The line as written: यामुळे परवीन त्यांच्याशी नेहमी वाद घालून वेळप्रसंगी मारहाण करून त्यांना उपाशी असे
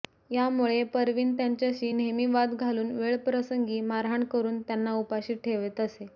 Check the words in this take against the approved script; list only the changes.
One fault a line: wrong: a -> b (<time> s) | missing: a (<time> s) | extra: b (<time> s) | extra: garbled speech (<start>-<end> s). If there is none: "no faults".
extra: ठेवत (5.4 s)